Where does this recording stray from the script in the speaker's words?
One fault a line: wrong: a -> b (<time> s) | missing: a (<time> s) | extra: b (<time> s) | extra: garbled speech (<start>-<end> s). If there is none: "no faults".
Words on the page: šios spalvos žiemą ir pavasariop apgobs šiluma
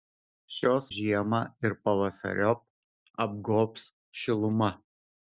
missing: spalvos (0.8 s)